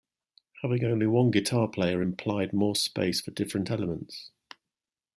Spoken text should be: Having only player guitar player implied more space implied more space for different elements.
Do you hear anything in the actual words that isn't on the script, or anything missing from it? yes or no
yes